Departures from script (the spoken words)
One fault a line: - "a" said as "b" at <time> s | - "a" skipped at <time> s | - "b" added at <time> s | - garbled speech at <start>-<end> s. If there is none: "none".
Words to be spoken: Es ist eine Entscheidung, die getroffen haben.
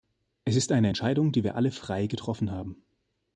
- "wir alle frei" added at 1.4 s